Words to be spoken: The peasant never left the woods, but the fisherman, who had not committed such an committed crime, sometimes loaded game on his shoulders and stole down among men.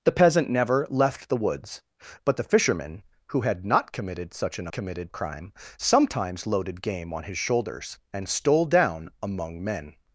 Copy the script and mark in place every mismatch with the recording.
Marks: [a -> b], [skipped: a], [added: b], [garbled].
The peasant never left the woods, but the fisherman, who had not committed such an committed crime, sometimes loaded game on his shoulders and stole down among men.